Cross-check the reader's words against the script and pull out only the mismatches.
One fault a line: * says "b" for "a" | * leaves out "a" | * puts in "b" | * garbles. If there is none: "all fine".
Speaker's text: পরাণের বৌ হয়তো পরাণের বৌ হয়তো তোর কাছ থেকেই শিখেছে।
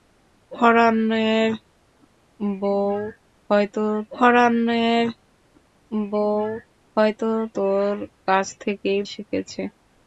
all fine